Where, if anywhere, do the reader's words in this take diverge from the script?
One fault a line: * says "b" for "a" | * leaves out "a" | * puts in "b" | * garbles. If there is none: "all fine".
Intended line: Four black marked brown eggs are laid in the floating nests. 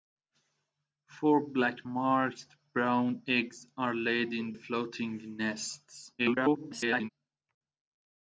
* leaves out "the"
* garbles